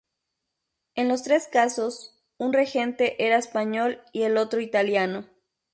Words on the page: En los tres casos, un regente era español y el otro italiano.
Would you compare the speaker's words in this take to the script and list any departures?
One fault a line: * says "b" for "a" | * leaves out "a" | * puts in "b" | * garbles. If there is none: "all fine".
all fine